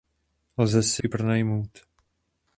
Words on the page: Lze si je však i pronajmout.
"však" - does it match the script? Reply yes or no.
no